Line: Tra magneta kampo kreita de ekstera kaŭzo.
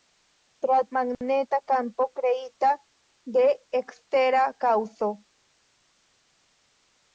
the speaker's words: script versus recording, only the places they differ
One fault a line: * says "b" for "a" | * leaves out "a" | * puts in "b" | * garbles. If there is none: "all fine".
all fine